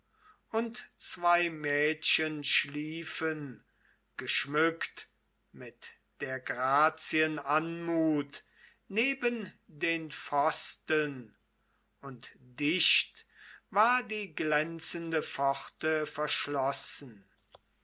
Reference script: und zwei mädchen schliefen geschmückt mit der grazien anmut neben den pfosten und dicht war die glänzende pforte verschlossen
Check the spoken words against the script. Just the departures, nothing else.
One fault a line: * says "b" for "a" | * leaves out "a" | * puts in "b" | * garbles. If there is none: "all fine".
all fine